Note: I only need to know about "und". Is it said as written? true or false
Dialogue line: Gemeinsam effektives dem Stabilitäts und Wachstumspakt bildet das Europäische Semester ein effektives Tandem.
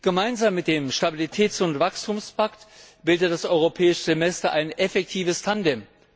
true